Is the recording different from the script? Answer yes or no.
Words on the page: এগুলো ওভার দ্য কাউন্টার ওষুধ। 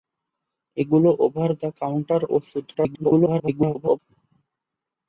yes